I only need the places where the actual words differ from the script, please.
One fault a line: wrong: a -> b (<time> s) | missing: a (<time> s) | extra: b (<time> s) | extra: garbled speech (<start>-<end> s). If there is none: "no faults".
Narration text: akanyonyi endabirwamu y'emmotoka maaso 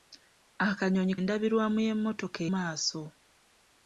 no faults